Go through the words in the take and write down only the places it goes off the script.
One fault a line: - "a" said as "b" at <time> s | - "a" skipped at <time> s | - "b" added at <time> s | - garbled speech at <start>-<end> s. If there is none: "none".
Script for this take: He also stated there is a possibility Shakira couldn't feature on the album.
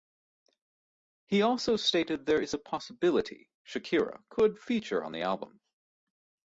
- "couldn't" said as "could" at 4.3 s